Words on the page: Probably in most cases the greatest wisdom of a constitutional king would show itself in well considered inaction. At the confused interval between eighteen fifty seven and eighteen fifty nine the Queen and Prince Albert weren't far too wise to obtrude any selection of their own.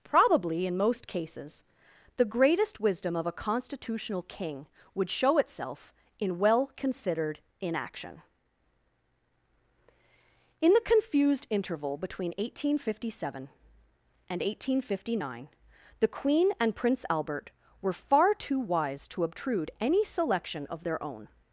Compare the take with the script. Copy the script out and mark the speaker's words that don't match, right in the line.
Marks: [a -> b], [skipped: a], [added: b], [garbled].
Probably in most cases the greatest wisdom of a constitutional king would show itself in well considered inaction. [At -> In] the confused interval between eighteen fifty seven and eighteen fifty nine the Queen and Prince Albert [weren't -> were] far too wise to obtrude any selection of their own.